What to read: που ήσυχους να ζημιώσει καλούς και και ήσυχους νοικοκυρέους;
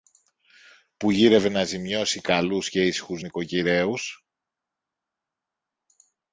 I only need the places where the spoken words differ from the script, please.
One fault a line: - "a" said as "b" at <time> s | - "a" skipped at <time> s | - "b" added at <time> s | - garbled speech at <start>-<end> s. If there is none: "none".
- "ήσυχους" said as "γύρευε" at 1.1 s
- "και" skipped at 2.9 s